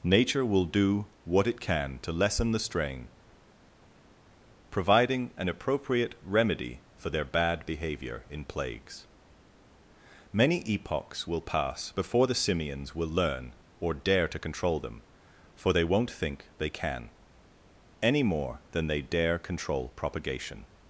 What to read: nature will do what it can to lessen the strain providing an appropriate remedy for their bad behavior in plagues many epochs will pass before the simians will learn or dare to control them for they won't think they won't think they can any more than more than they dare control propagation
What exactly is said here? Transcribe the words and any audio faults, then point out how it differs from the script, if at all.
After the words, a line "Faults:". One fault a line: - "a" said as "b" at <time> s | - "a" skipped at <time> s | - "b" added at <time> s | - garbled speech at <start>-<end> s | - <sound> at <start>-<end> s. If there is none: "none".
nature will do what it can to lessen the strain providing an appropriate remedy for their bad behavior in plagues many epochs will pass before the simians will learn or dare to control them for they won't think they can any more than they dare control propagation
Faults:
- "won't think they" skipped at 16.7 s
- "more than" skipped at 18.9 s